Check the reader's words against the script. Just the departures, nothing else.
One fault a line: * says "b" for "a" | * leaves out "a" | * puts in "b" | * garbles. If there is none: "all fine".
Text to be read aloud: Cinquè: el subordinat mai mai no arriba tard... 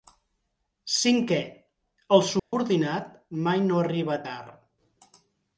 * leaves out "mai"